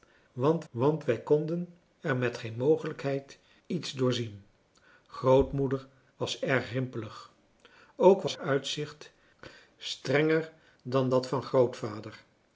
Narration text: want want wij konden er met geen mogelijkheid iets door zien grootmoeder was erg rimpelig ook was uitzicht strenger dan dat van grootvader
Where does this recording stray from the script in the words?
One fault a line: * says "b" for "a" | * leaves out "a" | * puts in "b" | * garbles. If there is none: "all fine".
all fine